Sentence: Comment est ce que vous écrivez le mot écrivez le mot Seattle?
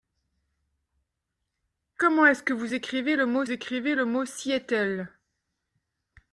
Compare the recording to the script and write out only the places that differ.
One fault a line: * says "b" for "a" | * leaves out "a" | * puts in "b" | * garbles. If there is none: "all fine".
all fine